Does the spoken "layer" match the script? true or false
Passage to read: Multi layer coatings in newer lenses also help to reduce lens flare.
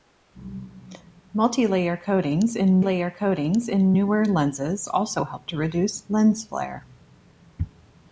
true